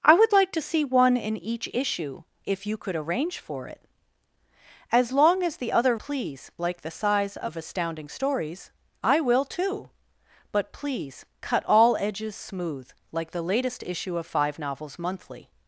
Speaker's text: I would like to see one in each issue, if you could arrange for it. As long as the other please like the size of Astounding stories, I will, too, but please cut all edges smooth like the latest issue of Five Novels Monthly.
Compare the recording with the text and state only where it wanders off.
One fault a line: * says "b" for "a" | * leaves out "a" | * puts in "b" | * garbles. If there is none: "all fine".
all fine